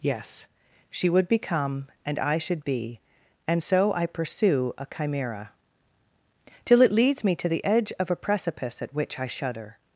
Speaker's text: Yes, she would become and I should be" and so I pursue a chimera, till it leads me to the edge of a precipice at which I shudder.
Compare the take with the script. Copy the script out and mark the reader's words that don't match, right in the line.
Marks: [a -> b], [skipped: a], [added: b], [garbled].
Yes, she would become and I should be" and so I pursue a chimera, till it leads me to the edge of a precipice at which I shudder.